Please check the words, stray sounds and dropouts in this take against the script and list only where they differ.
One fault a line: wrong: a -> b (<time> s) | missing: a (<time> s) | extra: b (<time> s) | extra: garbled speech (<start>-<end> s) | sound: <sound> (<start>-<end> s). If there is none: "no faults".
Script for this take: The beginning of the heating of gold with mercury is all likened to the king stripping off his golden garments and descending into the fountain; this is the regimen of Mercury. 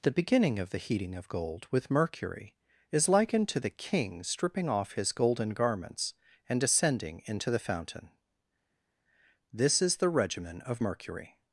missing: all (3.1 s)